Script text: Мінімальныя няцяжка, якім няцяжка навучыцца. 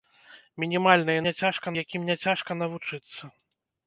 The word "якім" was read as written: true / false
true